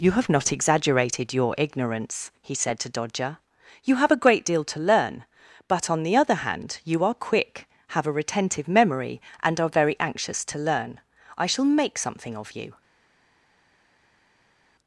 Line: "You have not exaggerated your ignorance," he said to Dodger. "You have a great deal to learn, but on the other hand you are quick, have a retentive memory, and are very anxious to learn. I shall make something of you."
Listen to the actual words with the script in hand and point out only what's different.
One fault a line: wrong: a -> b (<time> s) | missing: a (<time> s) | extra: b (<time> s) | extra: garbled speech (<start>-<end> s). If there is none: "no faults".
no faults